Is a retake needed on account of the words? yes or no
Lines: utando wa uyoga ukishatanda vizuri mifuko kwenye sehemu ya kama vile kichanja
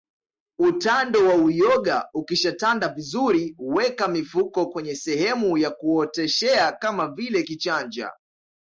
yes